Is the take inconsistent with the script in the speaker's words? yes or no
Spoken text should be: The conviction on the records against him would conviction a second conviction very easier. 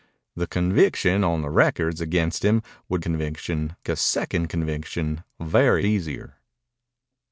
no